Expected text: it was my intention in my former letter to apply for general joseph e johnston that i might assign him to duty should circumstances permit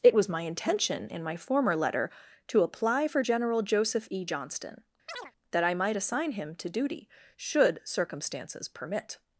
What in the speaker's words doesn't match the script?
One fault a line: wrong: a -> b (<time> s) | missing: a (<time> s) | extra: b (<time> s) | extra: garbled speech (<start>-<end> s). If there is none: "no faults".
no faults